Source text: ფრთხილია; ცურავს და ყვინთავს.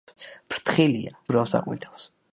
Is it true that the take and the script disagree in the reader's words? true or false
false